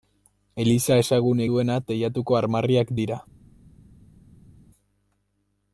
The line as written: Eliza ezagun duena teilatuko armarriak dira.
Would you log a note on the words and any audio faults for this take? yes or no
no